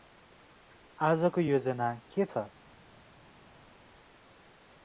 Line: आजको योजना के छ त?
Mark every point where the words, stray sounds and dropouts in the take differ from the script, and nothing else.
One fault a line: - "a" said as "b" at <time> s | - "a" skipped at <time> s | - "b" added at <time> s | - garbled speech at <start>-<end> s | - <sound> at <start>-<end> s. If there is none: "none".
- "छ" skipped at 2.3 s